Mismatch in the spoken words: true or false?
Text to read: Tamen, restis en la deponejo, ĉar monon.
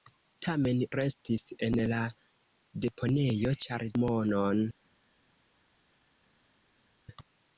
false